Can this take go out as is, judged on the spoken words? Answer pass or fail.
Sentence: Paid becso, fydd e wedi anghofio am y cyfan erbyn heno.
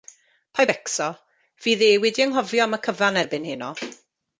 pass